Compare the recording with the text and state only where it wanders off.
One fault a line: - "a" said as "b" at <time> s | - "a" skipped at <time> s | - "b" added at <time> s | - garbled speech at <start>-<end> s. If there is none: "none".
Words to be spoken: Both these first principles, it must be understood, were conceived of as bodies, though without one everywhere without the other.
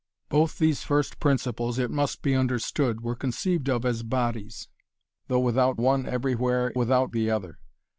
none